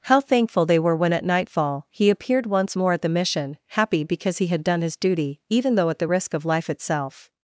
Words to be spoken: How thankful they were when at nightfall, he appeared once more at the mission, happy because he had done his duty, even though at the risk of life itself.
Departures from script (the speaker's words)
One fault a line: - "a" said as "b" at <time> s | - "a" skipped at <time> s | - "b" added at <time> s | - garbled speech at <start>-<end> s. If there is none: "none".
none